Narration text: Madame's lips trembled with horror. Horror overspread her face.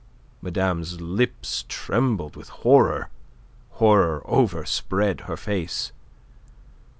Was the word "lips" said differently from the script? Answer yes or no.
no